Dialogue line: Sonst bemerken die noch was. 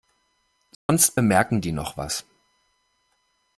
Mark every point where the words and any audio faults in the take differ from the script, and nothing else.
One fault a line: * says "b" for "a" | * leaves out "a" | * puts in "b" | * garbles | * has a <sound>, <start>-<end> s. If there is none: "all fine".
* has a dropout, 0.7-0.9 s